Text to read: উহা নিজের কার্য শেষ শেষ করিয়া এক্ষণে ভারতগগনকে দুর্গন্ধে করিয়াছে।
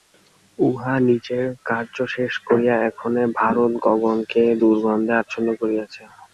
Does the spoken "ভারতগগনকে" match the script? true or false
true